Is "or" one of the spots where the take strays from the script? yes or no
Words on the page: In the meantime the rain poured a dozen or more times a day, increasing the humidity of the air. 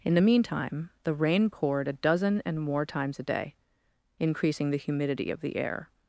yes